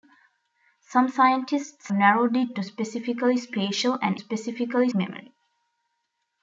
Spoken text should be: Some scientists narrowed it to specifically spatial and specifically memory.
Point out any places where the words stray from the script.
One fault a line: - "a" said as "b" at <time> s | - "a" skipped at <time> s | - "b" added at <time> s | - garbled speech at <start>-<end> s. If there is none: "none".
none